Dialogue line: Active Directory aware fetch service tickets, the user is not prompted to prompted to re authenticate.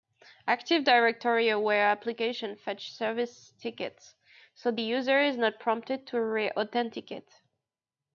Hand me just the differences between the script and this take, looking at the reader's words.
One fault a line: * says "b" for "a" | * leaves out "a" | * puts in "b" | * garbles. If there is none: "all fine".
* puts in "applications"
* puts in "so"
* leaves out "prompted to"